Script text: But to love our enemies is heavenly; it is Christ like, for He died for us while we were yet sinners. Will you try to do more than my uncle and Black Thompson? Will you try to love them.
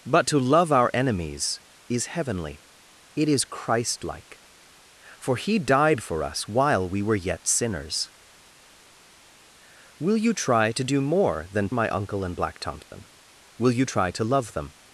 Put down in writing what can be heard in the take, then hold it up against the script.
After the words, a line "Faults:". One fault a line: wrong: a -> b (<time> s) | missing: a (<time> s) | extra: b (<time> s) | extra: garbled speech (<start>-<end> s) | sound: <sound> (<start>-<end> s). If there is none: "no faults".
But to love our enemies is heavenly; it is Christ like, for He died for us while we were yet sinners. Will you try to do more than my uncle and Black Thompson? Will you try to love them.
Faults:
sound: dropout (12.8-12.9 s)